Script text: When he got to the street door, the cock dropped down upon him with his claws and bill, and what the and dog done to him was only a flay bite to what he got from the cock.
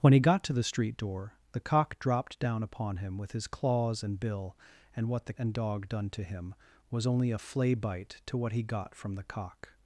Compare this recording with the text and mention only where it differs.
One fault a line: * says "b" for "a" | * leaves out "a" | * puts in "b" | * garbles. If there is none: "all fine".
all fine